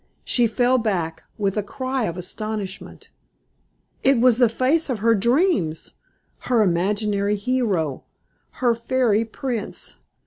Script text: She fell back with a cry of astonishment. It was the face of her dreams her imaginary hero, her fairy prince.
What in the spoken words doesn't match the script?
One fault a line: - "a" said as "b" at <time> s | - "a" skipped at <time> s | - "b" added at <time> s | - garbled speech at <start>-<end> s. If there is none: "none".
none